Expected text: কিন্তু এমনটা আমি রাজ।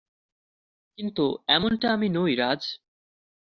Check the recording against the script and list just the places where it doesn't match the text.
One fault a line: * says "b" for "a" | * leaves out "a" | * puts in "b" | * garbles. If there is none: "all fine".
* puts in "নই"